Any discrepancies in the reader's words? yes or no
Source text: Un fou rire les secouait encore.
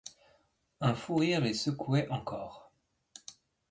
no